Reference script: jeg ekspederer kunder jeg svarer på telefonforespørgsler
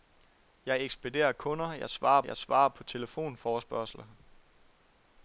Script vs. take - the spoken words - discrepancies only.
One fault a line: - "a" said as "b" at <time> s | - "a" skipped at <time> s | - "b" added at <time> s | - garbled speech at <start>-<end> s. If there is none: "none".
- "jeg svarer" added at 2.2 s